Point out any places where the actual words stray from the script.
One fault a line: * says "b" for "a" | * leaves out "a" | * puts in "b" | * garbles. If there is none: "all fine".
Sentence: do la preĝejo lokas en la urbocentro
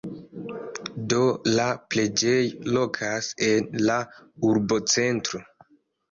all fine